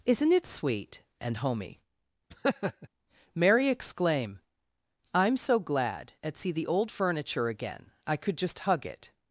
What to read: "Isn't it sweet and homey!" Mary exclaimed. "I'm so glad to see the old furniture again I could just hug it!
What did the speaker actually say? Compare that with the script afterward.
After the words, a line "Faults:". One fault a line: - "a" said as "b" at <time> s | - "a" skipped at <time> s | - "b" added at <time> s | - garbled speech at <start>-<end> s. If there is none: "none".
"Isn't it sweet and homey!" Mary exclaim. "I'm so glad at see the old furniture again I could just hug it!
Faults:
- "exclaimed" said as "exclaim" at 3.7 s
- "to" said as "at" at 6.2 s